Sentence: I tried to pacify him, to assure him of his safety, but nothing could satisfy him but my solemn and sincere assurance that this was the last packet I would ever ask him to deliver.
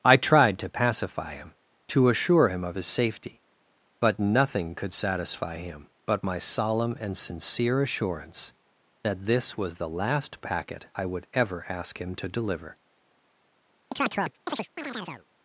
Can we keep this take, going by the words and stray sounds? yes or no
no